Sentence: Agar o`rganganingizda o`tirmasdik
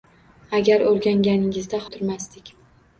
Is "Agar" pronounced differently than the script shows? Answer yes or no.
no